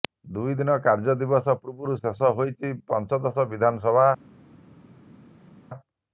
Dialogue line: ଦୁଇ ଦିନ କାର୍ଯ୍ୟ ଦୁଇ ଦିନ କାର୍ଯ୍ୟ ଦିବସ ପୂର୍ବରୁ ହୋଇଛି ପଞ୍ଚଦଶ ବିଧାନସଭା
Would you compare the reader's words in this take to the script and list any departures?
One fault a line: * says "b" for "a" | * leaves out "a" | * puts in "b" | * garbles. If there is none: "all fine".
* leaves out "ଦୁଇ ଦିନ କାର୍ଯ୍ୟ"
* puts in "ଶେଷ"